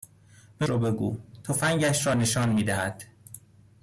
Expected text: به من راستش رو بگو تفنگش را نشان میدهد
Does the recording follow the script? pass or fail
fail